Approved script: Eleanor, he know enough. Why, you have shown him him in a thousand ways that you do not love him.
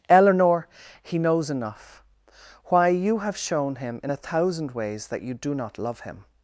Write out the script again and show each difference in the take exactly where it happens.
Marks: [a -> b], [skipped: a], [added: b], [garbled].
Eleanor, he [know -> knows] enough. Why, you have shown him [skipped: him] in a thousand ways that you do not love him.